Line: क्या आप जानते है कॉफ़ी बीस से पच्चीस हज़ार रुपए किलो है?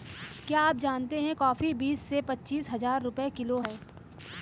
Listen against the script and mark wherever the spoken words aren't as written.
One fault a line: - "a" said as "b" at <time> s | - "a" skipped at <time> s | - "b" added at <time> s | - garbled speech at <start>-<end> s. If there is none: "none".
none